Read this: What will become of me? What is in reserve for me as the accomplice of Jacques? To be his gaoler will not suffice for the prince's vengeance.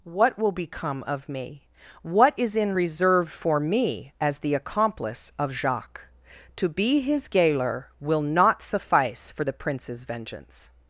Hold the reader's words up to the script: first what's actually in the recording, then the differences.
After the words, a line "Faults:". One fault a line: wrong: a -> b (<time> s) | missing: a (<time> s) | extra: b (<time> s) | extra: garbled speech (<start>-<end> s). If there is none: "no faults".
What will become of me? What is in reserve for me as the accomplice of Jacques? To be his gaoler will not suffice for the prince's vengeance.
Faults:
no faults